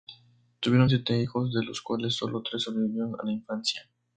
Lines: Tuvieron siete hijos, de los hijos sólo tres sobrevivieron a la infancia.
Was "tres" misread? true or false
false